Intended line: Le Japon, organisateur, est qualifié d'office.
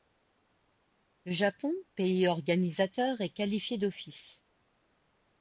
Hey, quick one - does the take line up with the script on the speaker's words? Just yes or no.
no